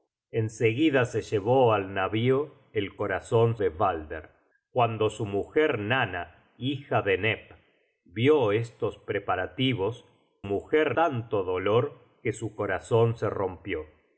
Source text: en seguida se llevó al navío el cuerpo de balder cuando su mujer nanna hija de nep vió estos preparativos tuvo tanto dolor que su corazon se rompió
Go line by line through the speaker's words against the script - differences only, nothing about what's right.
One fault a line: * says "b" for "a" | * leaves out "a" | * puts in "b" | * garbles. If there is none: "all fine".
* says "corazon" for "cuerpo"
* says "mujer" for "tuvo"